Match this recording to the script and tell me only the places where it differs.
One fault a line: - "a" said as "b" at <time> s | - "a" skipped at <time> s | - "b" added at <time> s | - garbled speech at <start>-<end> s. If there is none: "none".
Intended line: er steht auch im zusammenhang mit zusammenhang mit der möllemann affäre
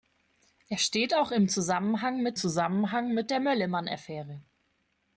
none